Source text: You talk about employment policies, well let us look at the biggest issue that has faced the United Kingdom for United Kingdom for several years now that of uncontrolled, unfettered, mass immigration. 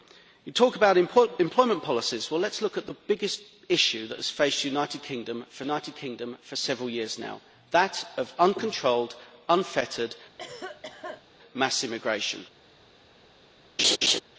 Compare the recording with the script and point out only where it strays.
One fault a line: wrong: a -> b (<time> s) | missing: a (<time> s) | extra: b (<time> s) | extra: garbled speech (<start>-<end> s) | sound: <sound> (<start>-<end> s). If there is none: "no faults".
sound: cough (10.4-11.3 s)
sound: laugh (13.8-14.2 s)